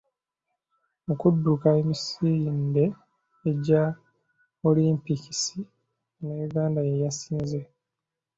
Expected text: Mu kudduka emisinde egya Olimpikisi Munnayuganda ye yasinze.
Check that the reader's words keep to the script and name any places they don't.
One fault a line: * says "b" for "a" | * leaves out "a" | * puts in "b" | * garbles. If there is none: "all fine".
all fine